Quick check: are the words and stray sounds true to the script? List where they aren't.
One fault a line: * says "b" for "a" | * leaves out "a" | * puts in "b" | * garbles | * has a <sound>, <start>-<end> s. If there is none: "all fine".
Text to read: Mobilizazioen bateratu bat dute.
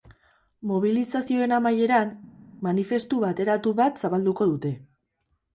* puts in "amaieran manifestu"
* puts in "zabalduko"